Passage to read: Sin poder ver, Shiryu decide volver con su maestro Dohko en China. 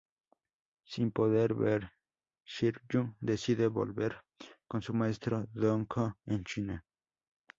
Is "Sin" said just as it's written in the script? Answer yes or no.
yes